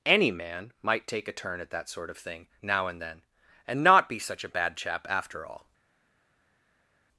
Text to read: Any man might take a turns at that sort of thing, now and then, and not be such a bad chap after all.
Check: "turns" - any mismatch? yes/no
yes